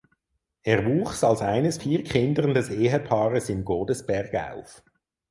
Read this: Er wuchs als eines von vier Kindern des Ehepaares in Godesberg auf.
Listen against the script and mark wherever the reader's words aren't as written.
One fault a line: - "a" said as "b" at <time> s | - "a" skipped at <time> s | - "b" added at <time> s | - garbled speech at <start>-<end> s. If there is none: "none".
- "von" skipped at 1.8 s